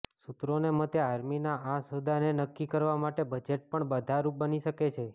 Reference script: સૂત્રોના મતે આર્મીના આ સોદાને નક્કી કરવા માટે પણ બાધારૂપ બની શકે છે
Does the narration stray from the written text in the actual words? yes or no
yes